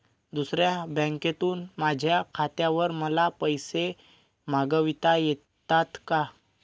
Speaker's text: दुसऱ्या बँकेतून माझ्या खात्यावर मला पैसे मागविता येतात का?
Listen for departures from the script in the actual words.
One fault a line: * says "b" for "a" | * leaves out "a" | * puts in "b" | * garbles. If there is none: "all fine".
all fine